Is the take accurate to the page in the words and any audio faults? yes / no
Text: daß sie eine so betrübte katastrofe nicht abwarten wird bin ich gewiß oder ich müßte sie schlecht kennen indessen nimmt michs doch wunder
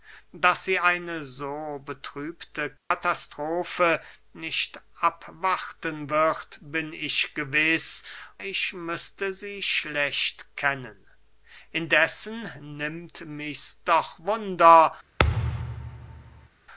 no